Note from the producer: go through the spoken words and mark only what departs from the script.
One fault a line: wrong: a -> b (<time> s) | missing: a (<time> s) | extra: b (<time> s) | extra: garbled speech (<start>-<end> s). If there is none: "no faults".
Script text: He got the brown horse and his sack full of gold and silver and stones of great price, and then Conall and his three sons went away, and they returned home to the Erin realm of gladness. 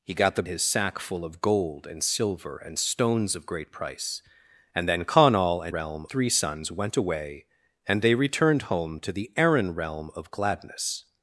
missing: brown horse and (0.4 s)
wrong: his -> realm (5.7 s)